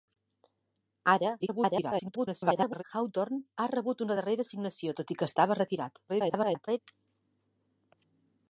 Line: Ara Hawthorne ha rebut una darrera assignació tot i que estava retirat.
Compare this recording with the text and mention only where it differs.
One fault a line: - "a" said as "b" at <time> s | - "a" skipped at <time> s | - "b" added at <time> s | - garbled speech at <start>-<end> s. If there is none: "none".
- garbled speech at 1.4-2.8 s
- garbled speech at 6.1-6.8 s